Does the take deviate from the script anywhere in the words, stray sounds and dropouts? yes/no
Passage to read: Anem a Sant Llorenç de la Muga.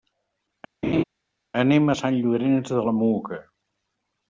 yes